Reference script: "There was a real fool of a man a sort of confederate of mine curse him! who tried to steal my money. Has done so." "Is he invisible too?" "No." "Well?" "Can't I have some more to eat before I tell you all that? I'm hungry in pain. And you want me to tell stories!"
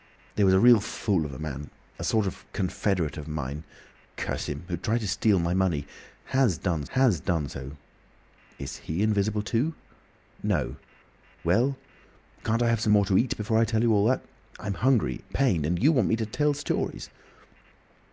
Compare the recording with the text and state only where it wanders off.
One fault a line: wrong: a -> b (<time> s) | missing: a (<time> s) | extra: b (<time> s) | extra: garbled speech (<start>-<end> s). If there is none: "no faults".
extra: has done (7.0 s)
missing: in (15.2 s)